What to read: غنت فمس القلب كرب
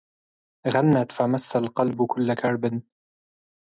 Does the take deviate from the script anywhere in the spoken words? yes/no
yes